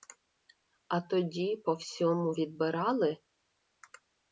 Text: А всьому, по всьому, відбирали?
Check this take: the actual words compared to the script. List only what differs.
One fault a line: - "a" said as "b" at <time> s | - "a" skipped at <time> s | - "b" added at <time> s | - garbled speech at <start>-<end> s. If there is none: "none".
- "всьому" said as "тоді" at 1.0 s